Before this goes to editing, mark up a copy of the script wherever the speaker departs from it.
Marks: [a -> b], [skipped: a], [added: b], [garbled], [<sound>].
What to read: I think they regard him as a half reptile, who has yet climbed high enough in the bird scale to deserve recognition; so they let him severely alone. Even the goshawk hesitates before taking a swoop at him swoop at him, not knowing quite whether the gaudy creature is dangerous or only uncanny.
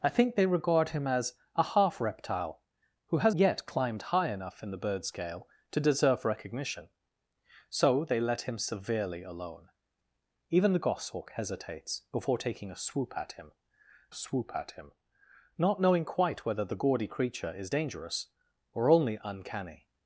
I think they regard him as a half reptile, who has yet climbed high enough in the bird scale to deserve recognition; so they let him severely alone. Even the goshawk hesitates before taking a swoop at him swoop at him, not knowing quite whether the gaudy creature is dangerous or only uncanny.